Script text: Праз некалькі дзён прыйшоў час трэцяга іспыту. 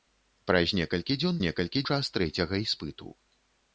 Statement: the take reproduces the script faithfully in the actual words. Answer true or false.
false